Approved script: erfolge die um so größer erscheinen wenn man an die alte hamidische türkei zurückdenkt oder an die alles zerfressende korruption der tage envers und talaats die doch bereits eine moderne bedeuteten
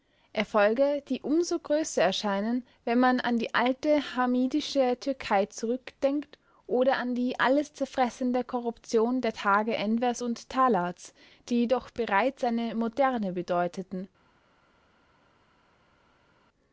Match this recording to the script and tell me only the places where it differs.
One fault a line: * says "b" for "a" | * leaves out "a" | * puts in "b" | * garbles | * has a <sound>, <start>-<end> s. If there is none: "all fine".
all fine